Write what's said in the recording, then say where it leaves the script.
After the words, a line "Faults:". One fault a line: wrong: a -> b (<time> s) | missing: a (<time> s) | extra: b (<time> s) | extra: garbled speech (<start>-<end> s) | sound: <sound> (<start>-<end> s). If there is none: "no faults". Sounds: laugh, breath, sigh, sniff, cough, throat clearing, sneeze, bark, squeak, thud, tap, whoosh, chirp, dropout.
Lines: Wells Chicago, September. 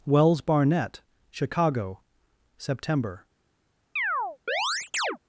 Wells Barnett Chicago, September.
Faults:
extra: Barnett (0.4 s)
sound: chirp (4.0-5.2 s)